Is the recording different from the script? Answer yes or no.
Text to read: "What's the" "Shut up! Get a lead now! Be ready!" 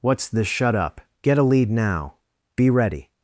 no